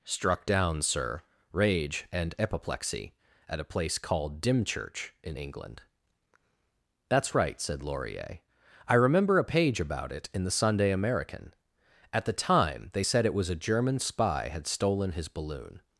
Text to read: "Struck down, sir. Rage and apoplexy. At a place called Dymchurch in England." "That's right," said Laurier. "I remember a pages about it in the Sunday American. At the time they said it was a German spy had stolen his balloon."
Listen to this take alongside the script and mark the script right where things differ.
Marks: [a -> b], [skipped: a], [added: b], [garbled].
"Struck down, sir. Rage and apoplexy. At a place called Dymchurch in England." "That's right," said Laurier. "I remember a [pages -> page] about it in the Sunday American. At the time they said it was a German spy had stolen his balloon."